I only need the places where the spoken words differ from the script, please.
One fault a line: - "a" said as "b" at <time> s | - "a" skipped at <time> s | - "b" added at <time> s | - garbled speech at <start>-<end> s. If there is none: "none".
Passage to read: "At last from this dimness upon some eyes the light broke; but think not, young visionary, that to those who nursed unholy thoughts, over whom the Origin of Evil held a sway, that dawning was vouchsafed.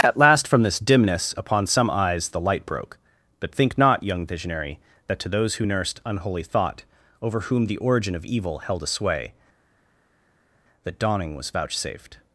- "thoughts" said as "thought" at 6.4 s